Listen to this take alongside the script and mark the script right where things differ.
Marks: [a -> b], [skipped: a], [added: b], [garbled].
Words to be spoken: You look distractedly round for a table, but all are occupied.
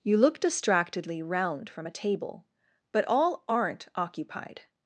You look distractedly round [for -> from] a table, but all [are -> aren't] occupied.